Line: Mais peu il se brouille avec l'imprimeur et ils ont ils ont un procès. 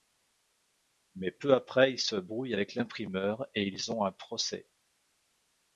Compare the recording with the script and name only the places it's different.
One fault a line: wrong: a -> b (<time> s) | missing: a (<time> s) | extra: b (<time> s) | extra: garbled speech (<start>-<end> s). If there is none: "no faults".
extra: après (1.5 s)
missing: ils ont (4.0 s)